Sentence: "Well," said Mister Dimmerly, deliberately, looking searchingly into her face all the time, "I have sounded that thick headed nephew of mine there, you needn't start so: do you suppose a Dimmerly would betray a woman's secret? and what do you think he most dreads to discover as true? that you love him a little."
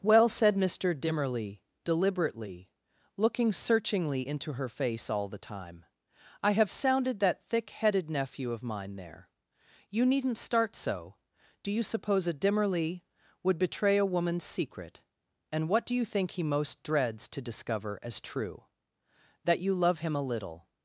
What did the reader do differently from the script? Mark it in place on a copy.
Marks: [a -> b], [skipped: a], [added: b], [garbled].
"Well," said Mister Dimmerly, deliberately, looking searchingly into her face all the time, "I have sounded that thick headed nephew of mine there, you needn't start so: do you suppose a Dimmerly would betray a woman's secret? and what do you think he most dreads to discover as true? that you love him a little."